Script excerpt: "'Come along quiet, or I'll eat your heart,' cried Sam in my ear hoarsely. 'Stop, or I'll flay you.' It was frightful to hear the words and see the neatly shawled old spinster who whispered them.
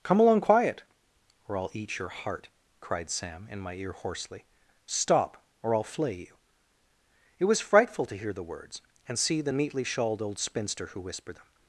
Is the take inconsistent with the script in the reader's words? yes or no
no